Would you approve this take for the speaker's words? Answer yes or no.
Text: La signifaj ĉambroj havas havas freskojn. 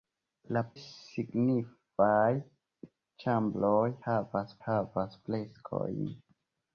yes